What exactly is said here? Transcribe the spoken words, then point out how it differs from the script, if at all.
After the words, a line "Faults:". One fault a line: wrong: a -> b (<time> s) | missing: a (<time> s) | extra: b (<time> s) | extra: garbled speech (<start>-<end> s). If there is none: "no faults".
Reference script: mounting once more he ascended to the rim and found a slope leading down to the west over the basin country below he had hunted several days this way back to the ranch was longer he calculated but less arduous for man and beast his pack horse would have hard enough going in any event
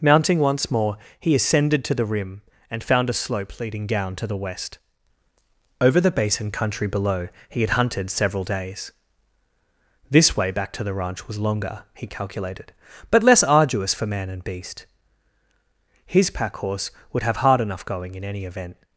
mounting once more he ascended to the rim and found a slope leading down to the west over the basin country below he had hunted several days this way back to the ranch was longer he calculated but less arduous for man and beast his pack horse would have hard enough going in any event
Faults:
no faults